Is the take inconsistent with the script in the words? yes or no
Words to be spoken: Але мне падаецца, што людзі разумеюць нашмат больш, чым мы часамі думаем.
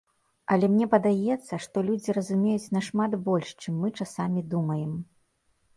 no